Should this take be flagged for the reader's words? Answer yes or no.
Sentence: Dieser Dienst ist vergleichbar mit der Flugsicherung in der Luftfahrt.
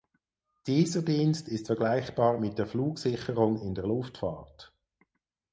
no